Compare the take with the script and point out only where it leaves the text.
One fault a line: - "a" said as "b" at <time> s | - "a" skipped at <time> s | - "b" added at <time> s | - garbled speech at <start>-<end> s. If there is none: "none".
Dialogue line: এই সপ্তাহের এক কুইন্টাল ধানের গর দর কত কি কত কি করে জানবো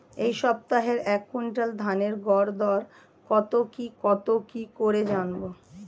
none